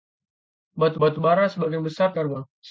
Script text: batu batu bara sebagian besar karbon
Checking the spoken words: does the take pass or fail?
pass